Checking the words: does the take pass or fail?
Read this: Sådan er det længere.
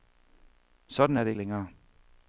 pass